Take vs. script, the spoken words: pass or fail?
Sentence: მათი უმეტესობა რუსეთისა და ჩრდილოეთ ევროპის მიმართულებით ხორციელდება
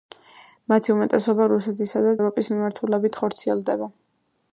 fail